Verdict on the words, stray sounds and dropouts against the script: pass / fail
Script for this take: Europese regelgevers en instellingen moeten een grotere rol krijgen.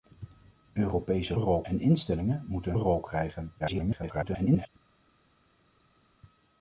fail